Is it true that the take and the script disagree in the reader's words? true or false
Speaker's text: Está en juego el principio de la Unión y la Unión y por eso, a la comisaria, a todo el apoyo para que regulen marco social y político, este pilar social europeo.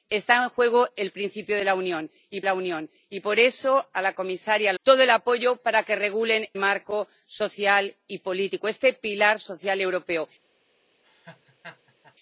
false